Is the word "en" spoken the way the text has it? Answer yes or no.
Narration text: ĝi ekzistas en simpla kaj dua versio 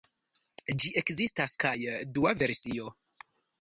no